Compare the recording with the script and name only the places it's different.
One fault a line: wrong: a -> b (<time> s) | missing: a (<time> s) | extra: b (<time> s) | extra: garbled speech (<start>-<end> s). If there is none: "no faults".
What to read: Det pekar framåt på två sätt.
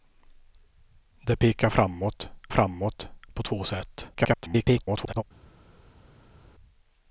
extra: framåt (2.5 s)
extra: garbled speech (4.1-5.2 s)